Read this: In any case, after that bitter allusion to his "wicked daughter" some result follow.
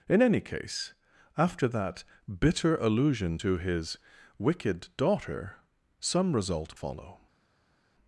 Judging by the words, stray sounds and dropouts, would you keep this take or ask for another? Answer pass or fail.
pass